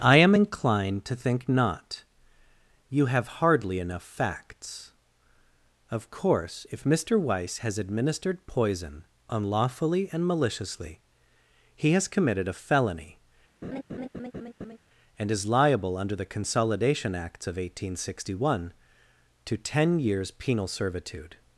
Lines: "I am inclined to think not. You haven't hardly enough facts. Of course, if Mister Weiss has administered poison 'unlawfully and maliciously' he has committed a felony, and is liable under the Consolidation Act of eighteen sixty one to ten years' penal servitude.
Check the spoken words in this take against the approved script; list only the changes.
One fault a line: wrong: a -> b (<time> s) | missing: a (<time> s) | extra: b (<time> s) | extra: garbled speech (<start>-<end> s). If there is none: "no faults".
wrong: haven't -> have (3.1 s)
wrong: Act -> Acts (17.1 s)